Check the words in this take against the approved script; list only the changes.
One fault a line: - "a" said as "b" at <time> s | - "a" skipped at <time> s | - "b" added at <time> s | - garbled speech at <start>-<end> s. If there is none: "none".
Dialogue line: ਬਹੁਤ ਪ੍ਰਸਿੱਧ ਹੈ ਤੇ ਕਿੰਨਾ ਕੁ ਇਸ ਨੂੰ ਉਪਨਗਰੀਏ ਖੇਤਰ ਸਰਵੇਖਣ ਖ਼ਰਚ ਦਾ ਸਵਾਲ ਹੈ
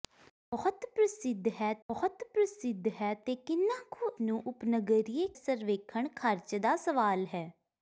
- "ਬਹੁਤ ਪ੍ਰਸਿੱਧ ਹੈ" added at 1.9 s
- "ਇਸ" skipped at 4.1 s
- "ਖੇਤਰ" skipped at 5.3 s